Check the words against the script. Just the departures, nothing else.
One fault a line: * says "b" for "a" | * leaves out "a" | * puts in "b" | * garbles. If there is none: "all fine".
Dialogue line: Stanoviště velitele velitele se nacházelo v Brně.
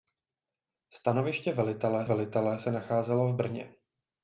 all fine